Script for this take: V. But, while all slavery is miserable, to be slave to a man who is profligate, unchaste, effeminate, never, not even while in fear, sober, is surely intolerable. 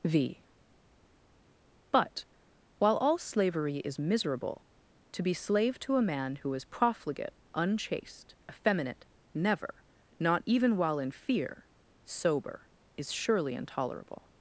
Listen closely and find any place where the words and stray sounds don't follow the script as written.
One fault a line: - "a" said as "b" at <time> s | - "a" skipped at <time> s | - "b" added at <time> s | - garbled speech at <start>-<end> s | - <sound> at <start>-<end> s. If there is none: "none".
none